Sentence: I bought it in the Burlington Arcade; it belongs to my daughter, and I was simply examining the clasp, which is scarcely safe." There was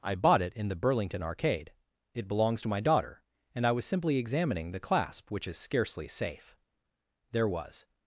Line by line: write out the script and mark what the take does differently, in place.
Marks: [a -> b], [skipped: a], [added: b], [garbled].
I bought it in the Burlington Arcade; it belongs to my daughter, and I was simply examining the clasp, which is scarcely safe." There was